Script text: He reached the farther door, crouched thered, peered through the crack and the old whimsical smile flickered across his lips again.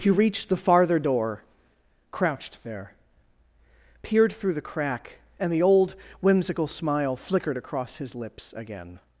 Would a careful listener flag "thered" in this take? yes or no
yes